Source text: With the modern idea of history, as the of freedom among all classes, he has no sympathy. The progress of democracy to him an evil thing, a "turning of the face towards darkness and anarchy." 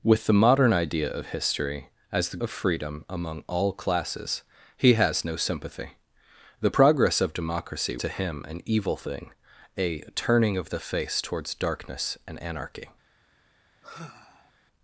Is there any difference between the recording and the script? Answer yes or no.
no